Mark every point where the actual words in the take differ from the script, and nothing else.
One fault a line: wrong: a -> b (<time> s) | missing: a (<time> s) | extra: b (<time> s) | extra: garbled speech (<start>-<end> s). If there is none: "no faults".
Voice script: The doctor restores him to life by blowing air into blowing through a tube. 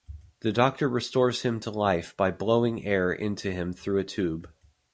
wrong: blowing -> him (3.5 s)